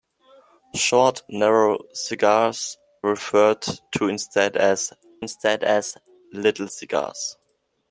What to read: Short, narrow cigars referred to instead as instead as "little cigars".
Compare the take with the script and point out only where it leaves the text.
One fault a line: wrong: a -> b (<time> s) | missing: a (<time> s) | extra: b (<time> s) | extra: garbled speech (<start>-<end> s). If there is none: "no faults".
no faults